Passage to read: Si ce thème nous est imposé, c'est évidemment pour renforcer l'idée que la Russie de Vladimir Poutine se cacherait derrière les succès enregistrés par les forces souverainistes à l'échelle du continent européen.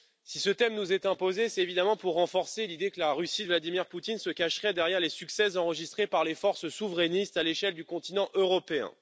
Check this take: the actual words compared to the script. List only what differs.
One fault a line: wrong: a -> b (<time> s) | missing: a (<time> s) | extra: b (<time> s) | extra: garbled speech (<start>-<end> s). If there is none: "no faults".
no faults